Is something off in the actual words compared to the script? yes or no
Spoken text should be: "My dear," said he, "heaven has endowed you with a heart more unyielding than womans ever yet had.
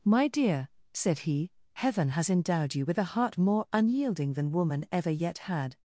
yes